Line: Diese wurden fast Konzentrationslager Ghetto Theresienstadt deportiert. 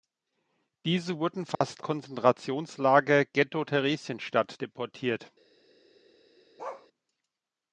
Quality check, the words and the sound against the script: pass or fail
fail